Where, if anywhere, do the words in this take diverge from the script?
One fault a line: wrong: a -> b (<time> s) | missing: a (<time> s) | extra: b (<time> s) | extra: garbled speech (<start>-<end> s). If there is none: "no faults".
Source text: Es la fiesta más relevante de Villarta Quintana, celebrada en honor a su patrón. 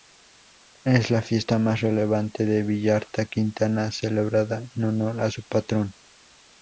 no faults